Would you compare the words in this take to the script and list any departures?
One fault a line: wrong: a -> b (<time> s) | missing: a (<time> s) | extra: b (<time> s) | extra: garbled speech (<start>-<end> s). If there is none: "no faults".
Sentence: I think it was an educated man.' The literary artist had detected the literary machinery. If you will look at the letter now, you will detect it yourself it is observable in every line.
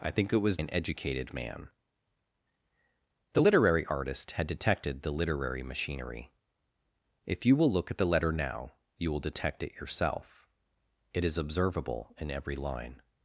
no faults